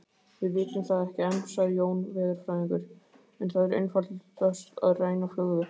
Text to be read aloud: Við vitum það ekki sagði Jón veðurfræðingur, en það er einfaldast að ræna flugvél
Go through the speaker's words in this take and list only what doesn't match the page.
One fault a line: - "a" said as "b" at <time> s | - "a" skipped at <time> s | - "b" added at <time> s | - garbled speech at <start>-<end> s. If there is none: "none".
- "enn" added at 1.3 s